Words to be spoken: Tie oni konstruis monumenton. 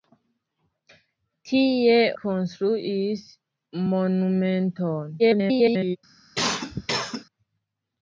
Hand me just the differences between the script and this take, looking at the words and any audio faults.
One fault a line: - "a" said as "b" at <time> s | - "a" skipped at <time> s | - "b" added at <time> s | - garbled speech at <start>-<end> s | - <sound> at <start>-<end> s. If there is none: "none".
- "oni" skipped at 2.0 s
- garbled speech at 5.2-6.0 s
- cough at 6.3-7.2 s